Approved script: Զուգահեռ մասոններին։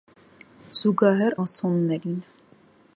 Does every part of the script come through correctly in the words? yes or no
yes